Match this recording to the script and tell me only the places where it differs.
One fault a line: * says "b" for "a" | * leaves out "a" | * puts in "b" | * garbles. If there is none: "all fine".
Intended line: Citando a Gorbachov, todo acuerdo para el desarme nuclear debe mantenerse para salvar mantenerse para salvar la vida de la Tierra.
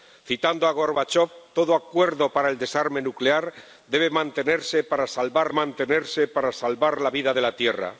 all fine